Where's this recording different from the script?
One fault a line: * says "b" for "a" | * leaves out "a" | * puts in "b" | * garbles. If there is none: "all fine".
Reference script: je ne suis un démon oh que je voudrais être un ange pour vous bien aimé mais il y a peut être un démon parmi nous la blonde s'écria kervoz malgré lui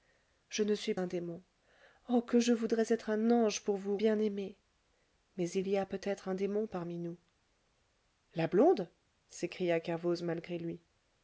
all fine